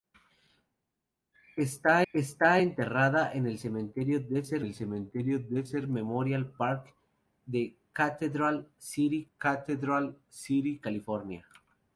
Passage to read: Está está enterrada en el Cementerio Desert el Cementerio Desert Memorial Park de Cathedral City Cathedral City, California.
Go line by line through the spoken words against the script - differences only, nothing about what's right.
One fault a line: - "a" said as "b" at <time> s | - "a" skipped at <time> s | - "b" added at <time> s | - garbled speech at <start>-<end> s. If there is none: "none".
none